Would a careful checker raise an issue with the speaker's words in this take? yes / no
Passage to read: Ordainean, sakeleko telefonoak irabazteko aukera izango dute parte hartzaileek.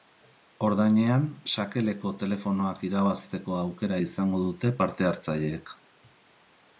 no